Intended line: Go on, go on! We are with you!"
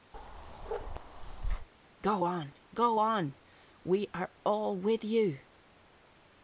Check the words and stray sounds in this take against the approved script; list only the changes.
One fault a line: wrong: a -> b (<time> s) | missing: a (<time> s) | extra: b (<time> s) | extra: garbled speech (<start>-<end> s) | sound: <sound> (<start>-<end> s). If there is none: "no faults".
sound: bark (0.1-1.7 s)
extra: all (4.4 s)